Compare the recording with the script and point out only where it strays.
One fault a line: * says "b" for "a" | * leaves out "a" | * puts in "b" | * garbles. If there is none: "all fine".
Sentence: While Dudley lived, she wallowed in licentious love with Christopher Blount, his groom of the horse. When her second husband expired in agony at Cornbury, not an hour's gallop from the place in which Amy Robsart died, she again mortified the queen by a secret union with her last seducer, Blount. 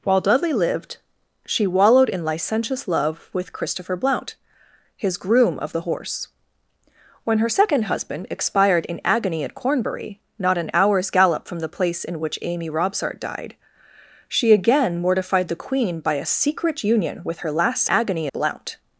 * says "agony" for "seducer"